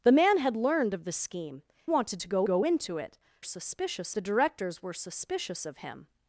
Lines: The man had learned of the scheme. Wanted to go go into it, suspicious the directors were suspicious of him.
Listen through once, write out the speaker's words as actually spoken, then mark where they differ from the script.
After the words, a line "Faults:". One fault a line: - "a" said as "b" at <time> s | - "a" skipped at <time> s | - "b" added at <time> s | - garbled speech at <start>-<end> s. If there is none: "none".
The man had learned of the scheme. Wanted to go go into it, suspicious the directors were suspicious of him.
Faults:
none